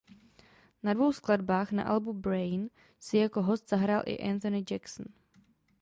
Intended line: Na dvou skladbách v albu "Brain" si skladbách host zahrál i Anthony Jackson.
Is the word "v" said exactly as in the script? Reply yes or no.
no